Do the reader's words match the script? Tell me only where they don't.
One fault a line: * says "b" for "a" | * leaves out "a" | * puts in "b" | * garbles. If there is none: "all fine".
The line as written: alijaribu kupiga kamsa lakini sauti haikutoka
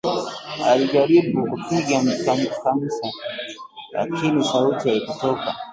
all fine